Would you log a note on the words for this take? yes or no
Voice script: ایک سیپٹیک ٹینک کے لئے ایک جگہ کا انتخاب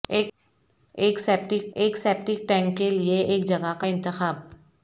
yes